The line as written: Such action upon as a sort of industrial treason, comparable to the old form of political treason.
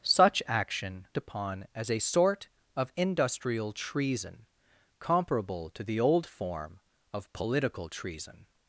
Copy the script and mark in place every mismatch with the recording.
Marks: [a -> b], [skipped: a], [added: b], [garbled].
Such action upon as a sort of industrial treason, comparable to the old form of political treason.